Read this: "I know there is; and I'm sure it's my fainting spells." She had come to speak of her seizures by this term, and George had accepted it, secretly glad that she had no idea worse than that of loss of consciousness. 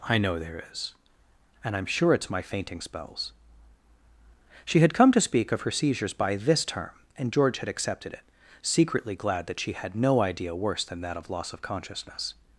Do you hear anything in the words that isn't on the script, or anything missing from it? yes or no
no